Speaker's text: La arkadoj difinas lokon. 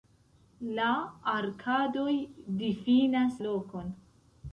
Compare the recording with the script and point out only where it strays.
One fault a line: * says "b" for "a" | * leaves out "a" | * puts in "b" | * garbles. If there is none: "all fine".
all fine